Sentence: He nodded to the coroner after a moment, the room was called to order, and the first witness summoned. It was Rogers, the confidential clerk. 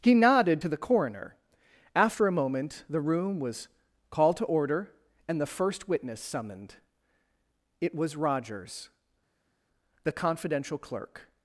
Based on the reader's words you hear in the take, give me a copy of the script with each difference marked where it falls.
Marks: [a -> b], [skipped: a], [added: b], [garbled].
He nodded to the coroner after a moment, the room was called to order, and the first witness summoned. It was Rogers, the confidential clerk.